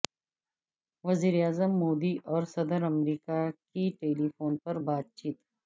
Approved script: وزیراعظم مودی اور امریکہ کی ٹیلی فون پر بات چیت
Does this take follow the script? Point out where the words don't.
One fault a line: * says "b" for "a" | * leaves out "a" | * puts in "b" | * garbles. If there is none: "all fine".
* puts in "صدر"